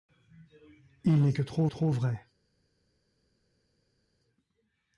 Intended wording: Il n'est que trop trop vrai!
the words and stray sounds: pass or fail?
pass